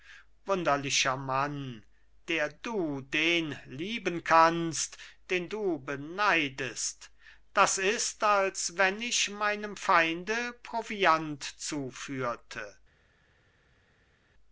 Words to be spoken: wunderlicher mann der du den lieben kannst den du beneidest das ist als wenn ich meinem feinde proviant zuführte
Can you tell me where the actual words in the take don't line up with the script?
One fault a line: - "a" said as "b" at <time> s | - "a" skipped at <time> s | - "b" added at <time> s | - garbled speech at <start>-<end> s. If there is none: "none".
none